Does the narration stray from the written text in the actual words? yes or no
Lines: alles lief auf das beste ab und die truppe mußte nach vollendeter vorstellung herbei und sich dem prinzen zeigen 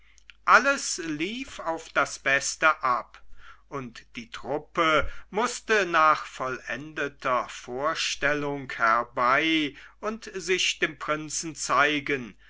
no